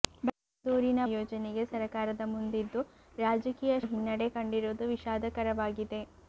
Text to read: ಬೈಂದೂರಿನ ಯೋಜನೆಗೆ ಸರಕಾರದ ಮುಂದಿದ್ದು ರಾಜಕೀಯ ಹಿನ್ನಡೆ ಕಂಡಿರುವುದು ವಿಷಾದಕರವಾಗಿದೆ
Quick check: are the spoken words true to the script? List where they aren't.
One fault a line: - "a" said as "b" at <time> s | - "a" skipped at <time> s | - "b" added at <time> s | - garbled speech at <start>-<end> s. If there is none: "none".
none